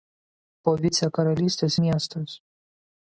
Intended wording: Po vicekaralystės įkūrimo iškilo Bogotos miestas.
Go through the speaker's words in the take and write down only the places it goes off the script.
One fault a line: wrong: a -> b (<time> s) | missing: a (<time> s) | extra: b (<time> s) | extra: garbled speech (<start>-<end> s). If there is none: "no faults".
missing: įkūrimo iškilo Bogotos (1.8 s)